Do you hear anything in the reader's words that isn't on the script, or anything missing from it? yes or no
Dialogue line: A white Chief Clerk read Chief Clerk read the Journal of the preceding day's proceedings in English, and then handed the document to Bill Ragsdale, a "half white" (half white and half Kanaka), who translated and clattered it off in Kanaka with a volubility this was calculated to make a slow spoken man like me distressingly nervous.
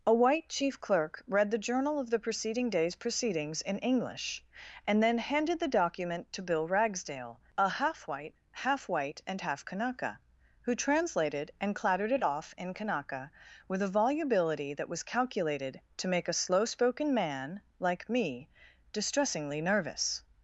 yes